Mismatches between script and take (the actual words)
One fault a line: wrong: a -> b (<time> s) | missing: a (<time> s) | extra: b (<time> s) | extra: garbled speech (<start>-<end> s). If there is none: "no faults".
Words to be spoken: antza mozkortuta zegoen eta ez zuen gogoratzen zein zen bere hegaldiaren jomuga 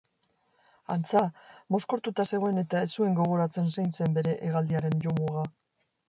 no faults